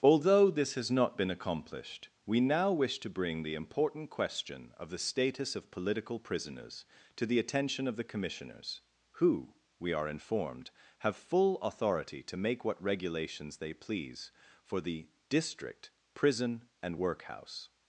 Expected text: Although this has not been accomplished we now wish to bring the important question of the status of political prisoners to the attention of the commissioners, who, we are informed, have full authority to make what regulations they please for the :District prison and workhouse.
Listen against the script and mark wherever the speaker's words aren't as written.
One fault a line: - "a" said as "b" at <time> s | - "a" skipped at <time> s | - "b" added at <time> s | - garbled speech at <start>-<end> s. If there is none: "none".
none